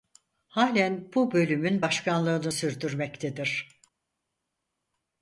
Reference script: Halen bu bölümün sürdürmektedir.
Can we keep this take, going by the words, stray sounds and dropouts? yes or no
no